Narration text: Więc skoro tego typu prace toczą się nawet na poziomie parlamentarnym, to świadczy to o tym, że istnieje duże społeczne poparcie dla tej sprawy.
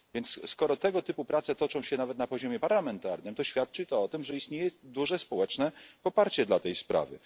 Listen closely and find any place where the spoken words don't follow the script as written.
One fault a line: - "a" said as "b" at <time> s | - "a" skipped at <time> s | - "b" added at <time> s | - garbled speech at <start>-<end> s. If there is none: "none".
none